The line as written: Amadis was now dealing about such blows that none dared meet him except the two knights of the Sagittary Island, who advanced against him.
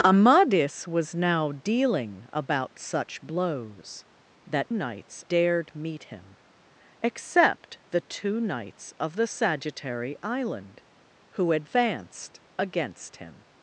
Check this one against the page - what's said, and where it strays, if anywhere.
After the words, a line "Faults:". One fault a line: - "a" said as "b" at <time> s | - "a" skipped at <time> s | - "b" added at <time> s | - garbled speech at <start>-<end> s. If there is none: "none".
Amadis was now dealing about such blows that knights dared meet him except the two knights of the Sagittary Island, who advanced against him.
Faults:
- "none" said as "knights" at 4.7 s